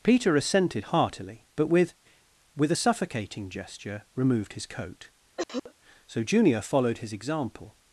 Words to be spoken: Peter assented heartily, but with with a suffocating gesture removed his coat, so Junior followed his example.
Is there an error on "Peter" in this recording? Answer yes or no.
no